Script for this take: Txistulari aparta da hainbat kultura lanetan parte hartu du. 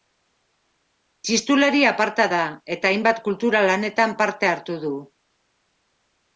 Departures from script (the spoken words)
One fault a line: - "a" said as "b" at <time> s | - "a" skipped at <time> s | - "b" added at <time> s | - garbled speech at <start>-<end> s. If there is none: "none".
- "eta" added at 2.8 s